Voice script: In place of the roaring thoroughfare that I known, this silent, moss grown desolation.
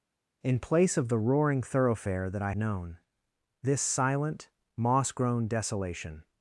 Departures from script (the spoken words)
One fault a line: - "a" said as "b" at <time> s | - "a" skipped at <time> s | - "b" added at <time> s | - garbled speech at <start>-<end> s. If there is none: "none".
none